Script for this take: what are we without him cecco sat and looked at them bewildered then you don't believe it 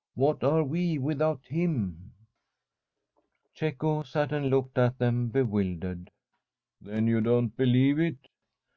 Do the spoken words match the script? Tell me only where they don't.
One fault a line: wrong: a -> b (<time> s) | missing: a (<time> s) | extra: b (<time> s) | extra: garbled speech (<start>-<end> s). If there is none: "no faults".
no faults